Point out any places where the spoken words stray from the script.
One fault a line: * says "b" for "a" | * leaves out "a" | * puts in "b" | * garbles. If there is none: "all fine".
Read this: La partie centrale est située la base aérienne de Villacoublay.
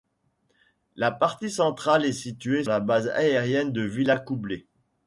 all fine